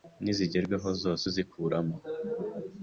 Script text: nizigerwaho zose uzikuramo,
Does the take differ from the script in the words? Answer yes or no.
no